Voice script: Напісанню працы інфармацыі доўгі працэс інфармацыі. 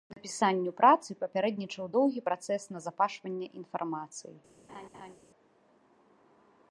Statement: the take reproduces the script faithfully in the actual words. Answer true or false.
false